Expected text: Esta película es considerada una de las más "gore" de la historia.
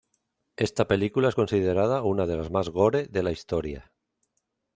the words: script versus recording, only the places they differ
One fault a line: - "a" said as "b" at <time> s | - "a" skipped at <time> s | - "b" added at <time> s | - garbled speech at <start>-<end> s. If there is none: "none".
none